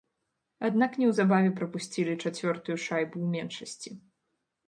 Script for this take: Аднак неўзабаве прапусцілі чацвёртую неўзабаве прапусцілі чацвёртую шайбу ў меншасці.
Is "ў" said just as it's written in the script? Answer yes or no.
yes